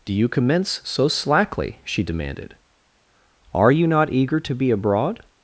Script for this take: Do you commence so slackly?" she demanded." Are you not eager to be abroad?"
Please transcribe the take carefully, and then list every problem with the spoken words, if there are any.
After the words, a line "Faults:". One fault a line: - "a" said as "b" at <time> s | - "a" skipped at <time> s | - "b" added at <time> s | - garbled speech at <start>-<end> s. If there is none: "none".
Do you commence so slackly?" she demanded." Are you not eager to be abroad?"
Faults:
none